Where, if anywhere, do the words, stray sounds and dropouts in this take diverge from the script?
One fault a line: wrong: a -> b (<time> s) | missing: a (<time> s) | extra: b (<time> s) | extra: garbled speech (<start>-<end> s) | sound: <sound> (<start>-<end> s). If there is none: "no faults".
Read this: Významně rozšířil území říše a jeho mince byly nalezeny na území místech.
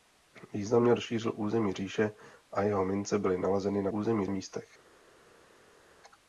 no faults